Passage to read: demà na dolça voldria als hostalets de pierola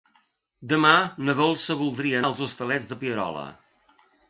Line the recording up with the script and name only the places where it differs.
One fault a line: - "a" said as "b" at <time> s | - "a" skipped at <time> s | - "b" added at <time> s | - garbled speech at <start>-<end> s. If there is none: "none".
none